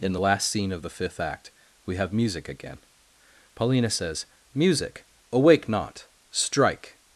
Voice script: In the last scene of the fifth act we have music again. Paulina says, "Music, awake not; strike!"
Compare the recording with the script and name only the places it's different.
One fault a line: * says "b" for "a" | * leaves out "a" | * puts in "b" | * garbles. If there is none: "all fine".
all fine